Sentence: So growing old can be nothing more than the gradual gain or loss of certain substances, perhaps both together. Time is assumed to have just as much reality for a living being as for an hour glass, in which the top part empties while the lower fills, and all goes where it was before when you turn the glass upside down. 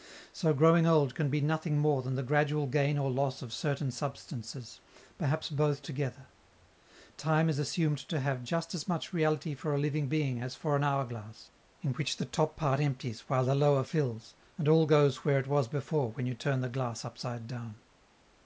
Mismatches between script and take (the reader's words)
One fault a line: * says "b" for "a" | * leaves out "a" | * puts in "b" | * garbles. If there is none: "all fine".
all fine